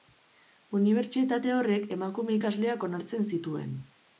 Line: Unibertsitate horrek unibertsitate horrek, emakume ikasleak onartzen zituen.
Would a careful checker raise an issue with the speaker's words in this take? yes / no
yes